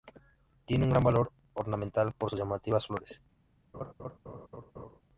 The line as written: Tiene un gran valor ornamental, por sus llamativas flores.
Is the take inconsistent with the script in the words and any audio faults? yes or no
yes